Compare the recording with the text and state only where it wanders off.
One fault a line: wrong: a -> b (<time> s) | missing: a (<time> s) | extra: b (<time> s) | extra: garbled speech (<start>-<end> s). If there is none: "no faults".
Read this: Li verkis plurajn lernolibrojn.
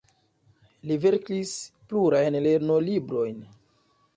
no faults